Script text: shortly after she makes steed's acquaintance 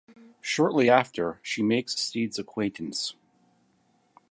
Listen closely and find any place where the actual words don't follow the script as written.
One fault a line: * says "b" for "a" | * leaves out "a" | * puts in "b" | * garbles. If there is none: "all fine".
all fine